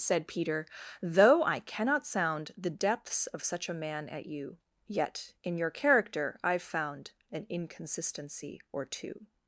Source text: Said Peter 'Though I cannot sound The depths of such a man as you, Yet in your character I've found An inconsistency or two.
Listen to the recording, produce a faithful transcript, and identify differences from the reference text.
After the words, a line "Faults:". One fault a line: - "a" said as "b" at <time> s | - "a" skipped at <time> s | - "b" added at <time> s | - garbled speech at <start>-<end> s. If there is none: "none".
Said Peter 'Though I cannot sound The depths of such a man at you, Yet in your character I've found An inconsistency or two.
Faults:
- "as" said as "at" at 4.1 s